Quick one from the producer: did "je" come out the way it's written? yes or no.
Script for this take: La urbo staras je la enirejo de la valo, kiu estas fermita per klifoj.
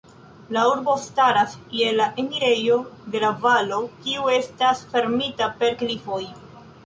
yes